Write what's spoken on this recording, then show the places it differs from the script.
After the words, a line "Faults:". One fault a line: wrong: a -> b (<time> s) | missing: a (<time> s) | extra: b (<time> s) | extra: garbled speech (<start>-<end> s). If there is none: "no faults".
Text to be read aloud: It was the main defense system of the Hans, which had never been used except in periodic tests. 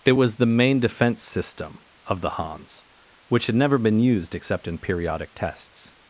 It was the main defense system of the Hans, which had never been used except in periodic tests.
Faults:
no faults